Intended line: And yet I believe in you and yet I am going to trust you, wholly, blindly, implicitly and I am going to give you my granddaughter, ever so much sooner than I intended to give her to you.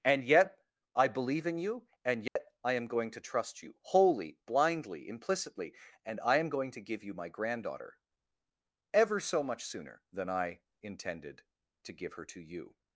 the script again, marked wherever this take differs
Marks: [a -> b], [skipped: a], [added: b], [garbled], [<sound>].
And yet I believe in you and yet [dropout] I am going to trust you, wholly, blindly, implicitly and I am going to give you my granddaughter, ever so much sooner than I intended to give her to you.